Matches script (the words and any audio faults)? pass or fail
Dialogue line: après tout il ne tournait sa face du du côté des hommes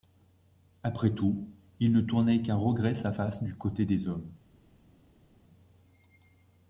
fail